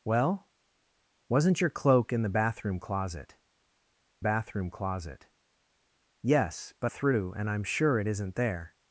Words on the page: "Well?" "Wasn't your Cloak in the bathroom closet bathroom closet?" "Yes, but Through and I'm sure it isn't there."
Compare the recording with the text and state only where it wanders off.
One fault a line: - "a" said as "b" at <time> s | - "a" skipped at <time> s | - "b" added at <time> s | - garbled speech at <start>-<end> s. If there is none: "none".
none